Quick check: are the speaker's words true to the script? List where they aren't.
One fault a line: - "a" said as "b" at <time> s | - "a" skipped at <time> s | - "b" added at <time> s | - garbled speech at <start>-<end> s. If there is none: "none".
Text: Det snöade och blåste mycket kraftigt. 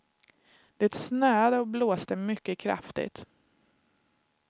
none